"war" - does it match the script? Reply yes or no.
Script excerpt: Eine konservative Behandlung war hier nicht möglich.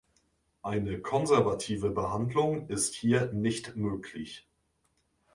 no